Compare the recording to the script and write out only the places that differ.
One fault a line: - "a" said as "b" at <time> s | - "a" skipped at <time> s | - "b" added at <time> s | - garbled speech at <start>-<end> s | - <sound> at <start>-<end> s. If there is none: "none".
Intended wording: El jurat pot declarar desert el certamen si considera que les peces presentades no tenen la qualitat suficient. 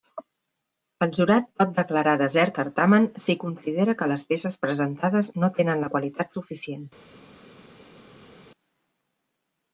- "el" skipped at 2.6 s